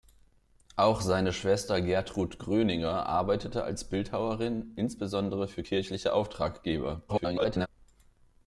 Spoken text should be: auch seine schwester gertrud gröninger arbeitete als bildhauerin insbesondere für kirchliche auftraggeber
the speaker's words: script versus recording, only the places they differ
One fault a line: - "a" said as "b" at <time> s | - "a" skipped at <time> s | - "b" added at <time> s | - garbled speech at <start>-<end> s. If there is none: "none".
- garbled speech at 7.1-7.7 s